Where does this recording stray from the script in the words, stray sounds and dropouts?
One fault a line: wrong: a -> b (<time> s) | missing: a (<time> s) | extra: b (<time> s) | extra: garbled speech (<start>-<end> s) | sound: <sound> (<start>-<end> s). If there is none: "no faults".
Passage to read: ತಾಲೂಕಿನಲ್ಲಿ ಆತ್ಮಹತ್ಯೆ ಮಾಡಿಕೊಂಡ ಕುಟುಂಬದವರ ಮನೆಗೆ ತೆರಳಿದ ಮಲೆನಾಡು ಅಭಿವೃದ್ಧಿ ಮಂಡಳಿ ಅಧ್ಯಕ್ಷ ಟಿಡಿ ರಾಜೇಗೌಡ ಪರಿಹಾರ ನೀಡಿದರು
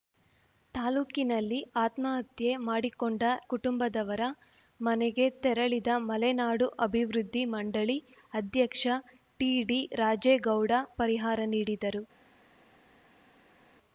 no faults